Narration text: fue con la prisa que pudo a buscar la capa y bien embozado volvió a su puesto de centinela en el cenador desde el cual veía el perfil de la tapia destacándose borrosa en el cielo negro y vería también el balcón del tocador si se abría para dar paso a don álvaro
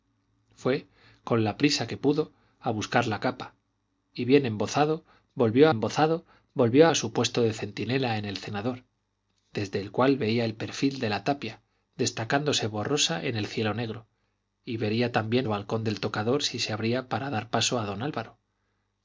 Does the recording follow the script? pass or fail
fail